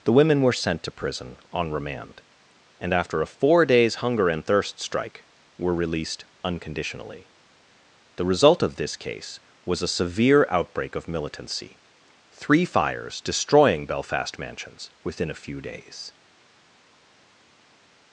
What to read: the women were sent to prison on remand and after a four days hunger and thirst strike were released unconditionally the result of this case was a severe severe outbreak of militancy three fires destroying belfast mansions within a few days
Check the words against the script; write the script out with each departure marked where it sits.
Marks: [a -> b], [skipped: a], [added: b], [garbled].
the women were sent to prison on remand and after a four days hunger and thirst strike were released unconditionally the result of this case was a severe [skipped: severe] outbreak of militancy three fires destroying belfast mansions within a few days